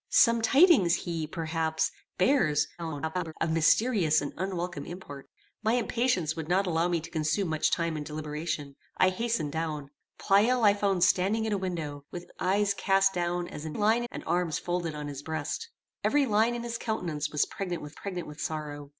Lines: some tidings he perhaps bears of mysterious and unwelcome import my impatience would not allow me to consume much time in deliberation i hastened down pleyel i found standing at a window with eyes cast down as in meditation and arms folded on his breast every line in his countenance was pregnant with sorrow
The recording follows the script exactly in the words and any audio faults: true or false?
false